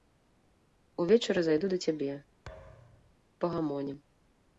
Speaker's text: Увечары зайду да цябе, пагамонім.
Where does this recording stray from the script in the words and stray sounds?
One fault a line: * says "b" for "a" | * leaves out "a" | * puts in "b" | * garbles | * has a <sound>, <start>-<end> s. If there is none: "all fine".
* has a thud, 2.5-3.2 s